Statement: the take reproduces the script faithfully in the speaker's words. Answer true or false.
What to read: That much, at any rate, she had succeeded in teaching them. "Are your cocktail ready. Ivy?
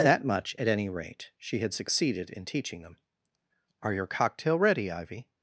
true